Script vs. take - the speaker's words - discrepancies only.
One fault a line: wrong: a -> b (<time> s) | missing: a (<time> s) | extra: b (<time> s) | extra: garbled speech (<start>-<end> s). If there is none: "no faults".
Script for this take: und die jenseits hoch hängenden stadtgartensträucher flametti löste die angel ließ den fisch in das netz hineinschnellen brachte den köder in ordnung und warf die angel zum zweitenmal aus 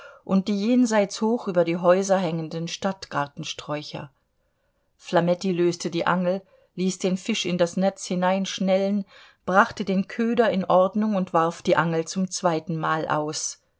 extra: über die häuser (1.5 s)